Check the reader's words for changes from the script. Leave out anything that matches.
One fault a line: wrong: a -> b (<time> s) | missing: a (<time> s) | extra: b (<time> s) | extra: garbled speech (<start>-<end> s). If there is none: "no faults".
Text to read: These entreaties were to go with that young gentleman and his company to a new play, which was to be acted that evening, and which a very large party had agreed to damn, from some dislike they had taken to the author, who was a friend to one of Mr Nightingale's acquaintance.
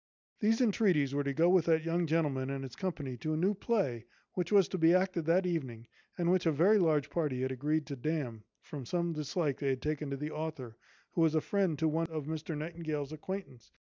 no faults